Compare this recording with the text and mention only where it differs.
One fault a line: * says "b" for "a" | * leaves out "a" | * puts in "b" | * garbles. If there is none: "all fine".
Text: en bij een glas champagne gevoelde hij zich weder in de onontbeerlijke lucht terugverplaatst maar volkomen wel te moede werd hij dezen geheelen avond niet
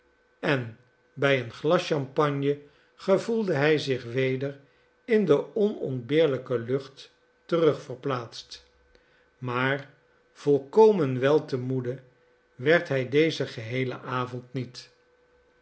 all fine